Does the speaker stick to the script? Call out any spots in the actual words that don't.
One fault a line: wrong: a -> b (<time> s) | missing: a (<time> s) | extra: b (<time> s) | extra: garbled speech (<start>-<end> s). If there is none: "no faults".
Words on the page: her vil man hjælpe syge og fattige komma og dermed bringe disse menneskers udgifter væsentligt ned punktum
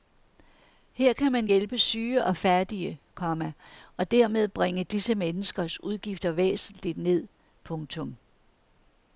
wrong: vil -> kan (1.1 s)